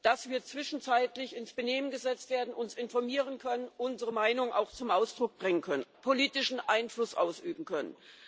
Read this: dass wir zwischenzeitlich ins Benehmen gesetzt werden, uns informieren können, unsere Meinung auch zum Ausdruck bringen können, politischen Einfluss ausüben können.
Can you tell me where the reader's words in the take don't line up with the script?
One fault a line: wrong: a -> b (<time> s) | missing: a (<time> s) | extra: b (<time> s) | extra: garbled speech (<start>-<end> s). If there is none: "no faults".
no faults